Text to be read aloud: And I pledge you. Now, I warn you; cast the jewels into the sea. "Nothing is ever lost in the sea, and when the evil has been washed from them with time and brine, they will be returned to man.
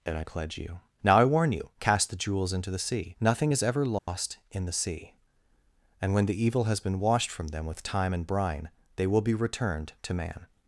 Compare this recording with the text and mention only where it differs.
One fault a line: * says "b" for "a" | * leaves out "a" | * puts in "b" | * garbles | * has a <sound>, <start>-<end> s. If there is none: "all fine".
* has a dropout, 4.0-4.1 s